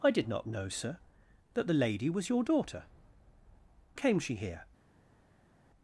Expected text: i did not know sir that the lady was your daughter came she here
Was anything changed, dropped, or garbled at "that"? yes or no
no